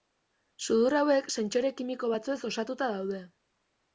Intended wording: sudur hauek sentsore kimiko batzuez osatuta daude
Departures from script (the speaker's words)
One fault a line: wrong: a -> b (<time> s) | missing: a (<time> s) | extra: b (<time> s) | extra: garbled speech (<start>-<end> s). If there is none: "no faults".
no faults